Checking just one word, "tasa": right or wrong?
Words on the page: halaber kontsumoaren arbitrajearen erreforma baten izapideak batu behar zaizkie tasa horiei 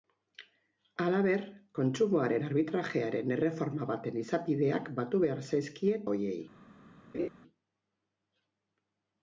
wrong